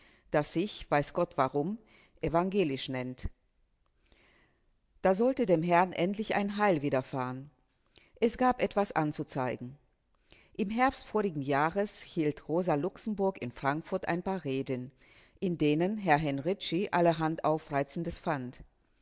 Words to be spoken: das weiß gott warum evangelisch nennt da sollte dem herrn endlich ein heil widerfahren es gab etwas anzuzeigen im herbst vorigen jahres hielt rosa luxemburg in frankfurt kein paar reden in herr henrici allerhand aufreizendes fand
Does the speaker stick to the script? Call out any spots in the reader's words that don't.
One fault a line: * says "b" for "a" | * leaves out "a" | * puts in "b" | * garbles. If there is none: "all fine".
* puts in "sich"
* says "ein" for "kein"
* puts in "denen"